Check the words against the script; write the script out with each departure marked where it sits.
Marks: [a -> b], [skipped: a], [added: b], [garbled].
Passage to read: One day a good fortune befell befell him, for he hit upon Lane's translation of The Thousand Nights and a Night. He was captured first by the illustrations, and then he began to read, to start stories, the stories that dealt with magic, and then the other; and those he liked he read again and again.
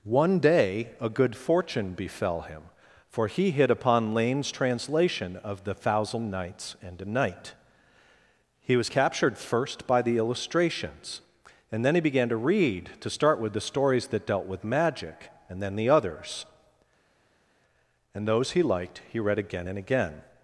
One day a good fortune befell [skipped: befell] him, for he hit upon Lane's translation of The Thousand Nights and a Night. He was captured first by the illustrations, and then he began to read, to start [stories, -> with] the stories that dealt with magic, and then the [other; -> others] and those he liked he read again and again.